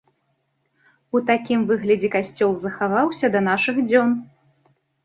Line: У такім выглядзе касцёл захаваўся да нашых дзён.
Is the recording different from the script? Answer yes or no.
no